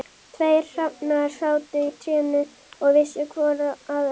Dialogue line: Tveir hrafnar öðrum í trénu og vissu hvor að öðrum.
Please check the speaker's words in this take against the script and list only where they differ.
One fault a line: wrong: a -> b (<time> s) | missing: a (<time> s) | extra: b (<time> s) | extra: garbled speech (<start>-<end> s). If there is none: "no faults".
wrong: öðrum -> sátu (1.4 s)